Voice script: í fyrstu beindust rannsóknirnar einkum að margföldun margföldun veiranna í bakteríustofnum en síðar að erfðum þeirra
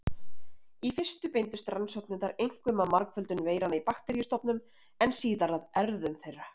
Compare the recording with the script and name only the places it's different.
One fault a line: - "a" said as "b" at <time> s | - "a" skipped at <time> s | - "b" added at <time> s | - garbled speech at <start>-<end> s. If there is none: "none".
- "margföldun" skipped at 3.5 s